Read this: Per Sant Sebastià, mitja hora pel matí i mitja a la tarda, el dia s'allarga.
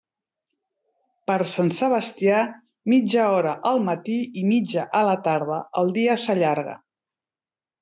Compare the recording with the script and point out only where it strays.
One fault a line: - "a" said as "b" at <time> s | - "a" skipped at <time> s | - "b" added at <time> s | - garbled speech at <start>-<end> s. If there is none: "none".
- "pel" said as "al" at 3.7 s